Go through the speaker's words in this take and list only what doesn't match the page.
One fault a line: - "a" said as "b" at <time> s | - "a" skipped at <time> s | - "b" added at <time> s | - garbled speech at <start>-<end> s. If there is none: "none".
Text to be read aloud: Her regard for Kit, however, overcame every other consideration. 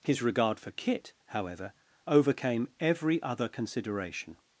- "Her" said as "His" at 0.0 s